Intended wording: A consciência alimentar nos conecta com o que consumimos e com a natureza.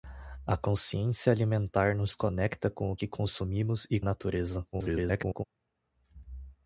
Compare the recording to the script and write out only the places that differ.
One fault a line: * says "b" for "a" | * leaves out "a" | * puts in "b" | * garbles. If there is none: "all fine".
* leaves out "com"
* garbles